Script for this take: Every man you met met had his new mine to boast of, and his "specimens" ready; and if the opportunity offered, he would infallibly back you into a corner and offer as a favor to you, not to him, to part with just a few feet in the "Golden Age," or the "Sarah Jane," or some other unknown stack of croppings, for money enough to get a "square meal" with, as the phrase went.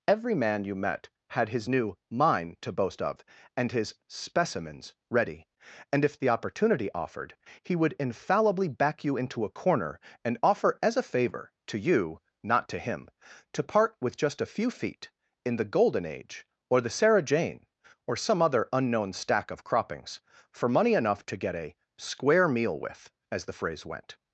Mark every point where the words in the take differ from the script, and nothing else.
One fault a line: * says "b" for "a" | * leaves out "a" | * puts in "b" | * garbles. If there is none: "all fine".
* leaves out "met"